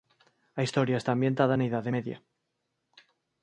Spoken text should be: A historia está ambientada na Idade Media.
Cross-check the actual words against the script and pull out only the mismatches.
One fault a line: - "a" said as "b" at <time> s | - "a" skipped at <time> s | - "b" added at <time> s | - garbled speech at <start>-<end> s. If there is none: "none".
none